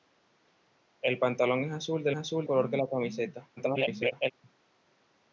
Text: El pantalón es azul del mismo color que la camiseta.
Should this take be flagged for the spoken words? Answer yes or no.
yes